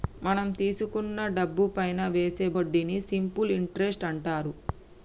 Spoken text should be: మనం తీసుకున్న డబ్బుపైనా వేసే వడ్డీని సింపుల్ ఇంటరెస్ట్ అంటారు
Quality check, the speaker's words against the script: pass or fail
pass